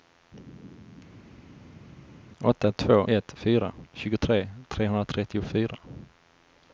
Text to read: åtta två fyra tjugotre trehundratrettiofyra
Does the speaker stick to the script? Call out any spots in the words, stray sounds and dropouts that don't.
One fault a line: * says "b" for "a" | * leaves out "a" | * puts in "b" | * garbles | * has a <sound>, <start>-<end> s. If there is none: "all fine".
* puts in "ett"